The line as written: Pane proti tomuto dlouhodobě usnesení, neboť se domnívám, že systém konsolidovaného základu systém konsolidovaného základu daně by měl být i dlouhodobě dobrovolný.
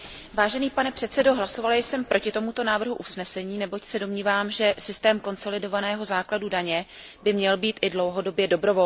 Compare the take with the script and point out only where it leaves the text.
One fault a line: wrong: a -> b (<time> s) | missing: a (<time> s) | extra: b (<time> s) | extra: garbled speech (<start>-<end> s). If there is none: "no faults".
extra: předsedající hlasovala jsem (0.9 s)
wrong: dlouhodobě -> návrhu (2.6 s)
missing: systém konsolidovaného základu (6.5 s)